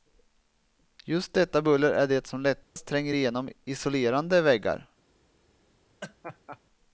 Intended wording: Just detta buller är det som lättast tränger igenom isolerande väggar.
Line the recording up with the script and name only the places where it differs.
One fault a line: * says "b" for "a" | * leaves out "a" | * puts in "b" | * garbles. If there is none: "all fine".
all fine